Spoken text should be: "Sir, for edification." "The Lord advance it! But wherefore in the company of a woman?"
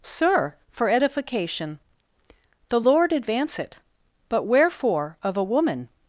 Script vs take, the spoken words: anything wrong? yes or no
yes